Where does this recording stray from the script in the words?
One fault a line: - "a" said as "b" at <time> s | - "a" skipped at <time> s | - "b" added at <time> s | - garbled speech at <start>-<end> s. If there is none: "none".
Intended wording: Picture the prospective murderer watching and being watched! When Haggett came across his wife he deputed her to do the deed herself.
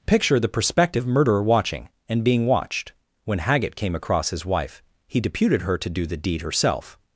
none